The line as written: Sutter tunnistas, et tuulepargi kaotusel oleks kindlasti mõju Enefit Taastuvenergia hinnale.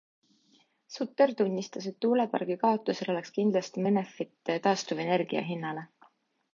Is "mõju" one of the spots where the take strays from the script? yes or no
yes